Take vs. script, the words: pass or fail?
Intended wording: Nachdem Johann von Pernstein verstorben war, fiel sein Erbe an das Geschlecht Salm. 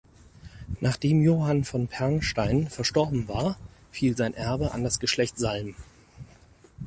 pass